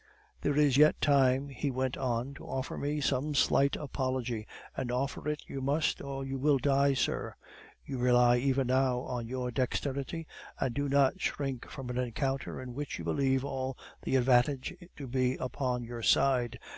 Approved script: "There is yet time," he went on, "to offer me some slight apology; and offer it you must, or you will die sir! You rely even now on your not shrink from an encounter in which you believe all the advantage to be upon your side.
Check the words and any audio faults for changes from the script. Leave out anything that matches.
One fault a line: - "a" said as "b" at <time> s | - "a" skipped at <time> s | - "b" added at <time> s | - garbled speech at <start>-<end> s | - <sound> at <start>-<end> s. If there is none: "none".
- "dexterity and do" added at 9.5 s